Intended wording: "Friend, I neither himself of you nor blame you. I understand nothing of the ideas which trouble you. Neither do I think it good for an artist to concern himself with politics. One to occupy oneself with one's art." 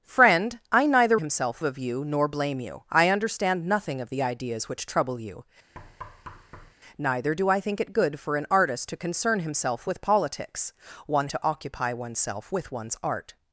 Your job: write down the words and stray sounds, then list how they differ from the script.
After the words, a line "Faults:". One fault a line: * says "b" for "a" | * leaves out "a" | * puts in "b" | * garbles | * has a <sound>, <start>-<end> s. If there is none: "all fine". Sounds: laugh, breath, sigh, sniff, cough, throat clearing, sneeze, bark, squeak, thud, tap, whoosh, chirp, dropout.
"Friend, I neither himself of you nor blame you. I understand nothing of the ideas which trouble you. Neither do I think it good for an artist to concern himself with politics. One to occupy oneself with one's art."
Faults:
* has a thud, 5.7-6.7 s